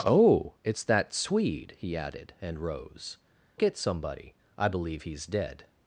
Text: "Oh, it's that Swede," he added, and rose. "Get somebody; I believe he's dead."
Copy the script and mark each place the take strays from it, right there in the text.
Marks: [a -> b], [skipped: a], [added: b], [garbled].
"Oh, it's that Swede," he added, and rose. "Get somebody; I believe he's dead."